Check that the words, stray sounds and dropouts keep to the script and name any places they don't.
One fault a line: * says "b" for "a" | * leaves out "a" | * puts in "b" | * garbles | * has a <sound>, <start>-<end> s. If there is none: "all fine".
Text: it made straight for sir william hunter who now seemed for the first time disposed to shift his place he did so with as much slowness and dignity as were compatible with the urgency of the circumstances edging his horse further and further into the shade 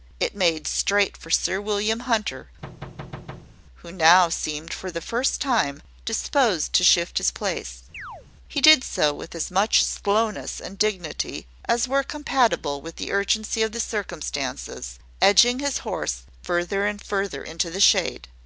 * has a thud, 2.6-3.6 s
* has a chirp, 7.9-8.3 s